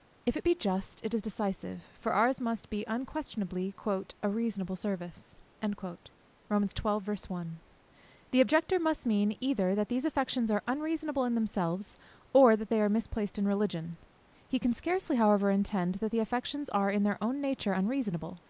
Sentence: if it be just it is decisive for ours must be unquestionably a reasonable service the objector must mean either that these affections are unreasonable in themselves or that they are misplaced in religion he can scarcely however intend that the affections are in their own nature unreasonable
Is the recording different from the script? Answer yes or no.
no